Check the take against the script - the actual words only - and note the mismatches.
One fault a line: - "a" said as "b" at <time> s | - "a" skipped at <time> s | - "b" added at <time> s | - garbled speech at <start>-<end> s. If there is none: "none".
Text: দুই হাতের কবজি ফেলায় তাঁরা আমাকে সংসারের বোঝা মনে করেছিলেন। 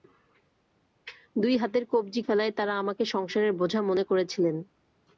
none